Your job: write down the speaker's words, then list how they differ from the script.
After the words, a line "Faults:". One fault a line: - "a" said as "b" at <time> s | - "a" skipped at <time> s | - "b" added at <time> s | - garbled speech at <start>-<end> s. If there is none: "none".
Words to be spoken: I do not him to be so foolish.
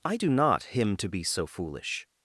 I do not him to be so foolish.
Faults:
none